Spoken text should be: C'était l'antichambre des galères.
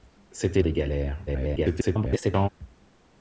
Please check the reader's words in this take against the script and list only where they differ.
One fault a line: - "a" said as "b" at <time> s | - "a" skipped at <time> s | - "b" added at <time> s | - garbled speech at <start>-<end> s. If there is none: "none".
- "l'antichambre" skipped at 0.6 s
- garbled speech at 1.3-2.5 s